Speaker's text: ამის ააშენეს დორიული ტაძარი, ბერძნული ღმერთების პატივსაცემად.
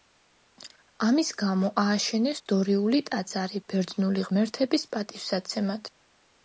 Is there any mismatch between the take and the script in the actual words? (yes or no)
yes